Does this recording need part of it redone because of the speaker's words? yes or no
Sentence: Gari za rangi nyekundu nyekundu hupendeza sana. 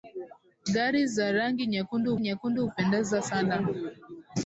no